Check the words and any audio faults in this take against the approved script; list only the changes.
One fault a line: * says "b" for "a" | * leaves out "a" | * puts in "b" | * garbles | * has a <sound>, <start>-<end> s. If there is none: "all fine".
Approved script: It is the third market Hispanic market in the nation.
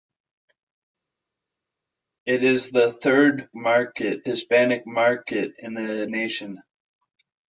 all fine